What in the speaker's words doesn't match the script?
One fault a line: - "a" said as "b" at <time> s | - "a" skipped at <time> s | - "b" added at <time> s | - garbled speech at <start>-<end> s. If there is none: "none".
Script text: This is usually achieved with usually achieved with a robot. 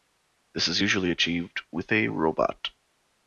- "usually achieved with" skipped at 1.9 s